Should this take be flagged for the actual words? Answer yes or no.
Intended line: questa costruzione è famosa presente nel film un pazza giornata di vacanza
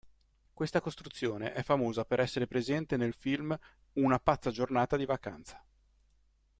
yes